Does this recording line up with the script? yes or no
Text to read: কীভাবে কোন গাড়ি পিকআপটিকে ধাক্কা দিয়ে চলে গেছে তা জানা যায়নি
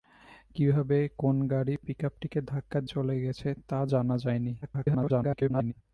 no